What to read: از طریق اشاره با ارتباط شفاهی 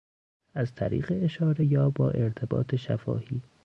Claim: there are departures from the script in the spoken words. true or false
true